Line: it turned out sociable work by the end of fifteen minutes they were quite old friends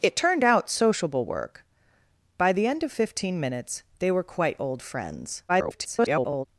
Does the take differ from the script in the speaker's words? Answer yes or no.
yes